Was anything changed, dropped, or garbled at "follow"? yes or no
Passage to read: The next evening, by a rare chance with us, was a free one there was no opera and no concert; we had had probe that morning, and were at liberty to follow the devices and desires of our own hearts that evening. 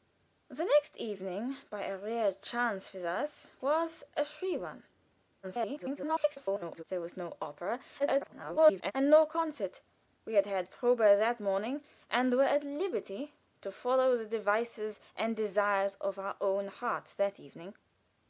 no